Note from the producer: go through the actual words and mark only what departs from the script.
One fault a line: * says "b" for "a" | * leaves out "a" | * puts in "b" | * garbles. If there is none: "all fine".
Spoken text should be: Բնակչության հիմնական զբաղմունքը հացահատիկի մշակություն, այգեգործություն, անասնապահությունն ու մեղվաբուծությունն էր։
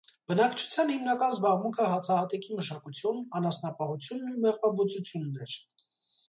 * leaves out "այգեգործություն"